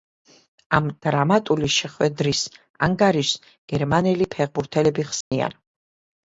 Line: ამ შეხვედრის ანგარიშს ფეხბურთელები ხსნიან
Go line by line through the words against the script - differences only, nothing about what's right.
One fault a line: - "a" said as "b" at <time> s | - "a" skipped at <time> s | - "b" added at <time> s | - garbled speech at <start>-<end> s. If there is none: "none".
- "დრამატული" added at 1.1 s
- "გერმანელი" added at 3.8 s